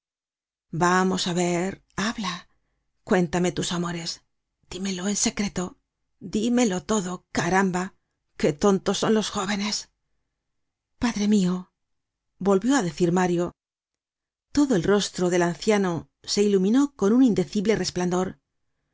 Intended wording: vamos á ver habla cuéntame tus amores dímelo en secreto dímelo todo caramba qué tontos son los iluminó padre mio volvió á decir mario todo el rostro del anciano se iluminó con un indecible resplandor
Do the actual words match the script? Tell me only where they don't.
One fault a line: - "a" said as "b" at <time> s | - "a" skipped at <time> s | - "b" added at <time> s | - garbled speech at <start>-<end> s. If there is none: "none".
- "iluminó" said as "jóvenes" at 9.4 s